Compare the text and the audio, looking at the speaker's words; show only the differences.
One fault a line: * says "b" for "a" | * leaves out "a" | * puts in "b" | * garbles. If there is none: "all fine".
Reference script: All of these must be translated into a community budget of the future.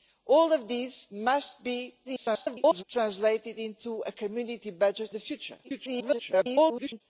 * garbles
* leaves out "of"
* garbles